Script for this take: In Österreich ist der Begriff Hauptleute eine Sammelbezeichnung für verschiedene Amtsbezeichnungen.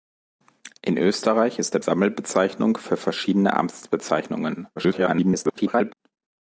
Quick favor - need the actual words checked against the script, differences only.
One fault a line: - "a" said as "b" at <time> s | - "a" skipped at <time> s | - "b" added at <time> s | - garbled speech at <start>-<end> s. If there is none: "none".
- "Begriff Hauptleute eine" skipped at 1.8 s
- garbled speech at 4.8-5.9 s